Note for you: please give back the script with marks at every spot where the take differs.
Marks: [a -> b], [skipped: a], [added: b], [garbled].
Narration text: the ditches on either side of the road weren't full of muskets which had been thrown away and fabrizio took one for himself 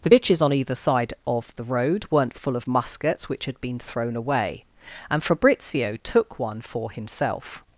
the ditches on either side of the road weren't full of muskets which had been thrown away and fabrizio took one for himself